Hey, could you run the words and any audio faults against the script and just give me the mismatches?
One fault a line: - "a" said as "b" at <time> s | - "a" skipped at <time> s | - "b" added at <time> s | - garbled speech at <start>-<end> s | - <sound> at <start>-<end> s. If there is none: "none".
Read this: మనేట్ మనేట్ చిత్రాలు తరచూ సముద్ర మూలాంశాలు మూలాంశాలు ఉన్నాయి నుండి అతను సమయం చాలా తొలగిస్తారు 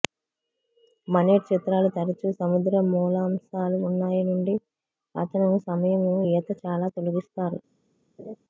- "మనేట్" skipped at 1.4 s
- "మూలాంశాలు" skipped at 3.8 s
- "ఈత" added at 6.3 s
- laugh at 8.2-8.4 s